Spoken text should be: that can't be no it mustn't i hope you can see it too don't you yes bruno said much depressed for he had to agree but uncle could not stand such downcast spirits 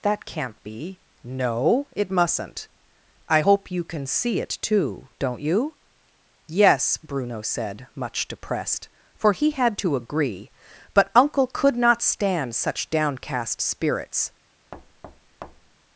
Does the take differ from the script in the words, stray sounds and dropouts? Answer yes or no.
yes